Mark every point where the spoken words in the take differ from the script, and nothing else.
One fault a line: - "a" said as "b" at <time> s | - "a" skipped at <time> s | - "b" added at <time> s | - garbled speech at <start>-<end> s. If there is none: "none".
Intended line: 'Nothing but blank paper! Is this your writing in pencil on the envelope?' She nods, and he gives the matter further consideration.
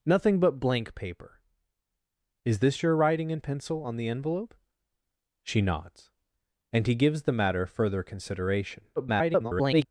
- garbled speech at 9.0-9.9 s